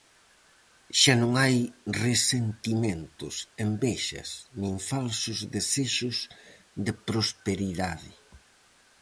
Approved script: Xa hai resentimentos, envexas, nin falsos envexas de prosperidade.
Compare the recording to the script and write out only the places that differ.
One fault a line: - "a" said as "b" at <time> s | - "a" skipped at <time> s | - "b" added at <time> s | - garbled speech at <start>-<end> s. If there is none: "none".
- "non" added at 1.2 s
- "envexas" said as "desexos" at 5.5 s